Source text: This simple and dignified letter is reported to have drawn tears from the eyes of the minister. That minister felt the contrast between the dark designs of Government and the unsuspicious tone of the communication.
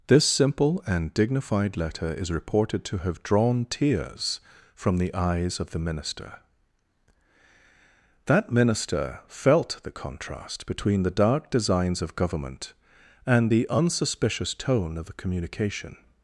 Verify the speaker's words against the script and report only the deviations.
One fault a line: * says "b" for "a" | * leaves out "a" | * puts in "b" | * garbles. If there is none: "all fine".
all fine